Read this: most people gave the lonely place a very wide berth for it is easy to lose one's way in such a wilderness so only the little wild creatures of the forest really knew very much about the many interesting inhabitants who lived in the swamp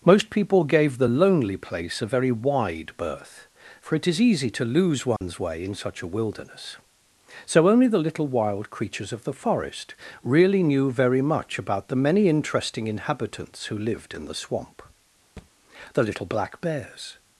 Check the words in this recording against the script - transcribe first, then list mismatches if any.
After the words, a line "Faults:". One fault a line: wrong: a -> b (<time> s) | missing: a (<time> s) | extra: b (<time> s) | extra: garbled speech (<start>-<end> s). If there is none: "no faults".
most people gave the lonely place a very wide berth for it is easy to lose one's way in such a wilderness so only the little wild creatures of the forest really knew very much about the many interesting inhabitants who lived in the swamp the little black bears
Faults:
extra: the little black bears (15.9 s)